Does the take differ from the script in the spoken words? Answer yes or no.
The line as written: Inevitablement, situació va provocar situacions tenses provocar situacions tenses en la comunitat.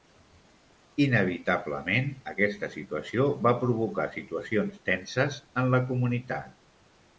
yes